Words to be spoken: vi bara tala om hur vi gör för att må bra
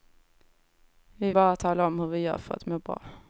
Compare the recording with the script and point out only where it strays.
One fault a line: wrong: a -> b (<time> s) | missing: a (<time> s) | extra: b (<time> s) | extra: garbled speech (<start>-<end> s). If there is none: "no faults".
no faults